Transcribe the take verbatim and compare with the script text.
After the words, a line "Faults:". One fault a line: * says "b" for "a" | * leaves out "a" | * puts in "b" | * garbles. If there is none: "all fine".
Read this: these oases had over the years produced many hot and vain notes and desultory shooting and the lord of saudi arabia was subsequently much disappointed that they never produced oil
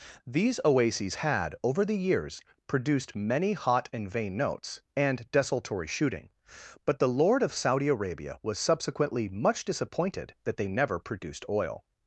these oases had over the years produced many hot and vain notes and desultory shooting but the lord of saudi arabia was subsequently much disappointed that they never produced oil
Faults:
* says "but" for "and"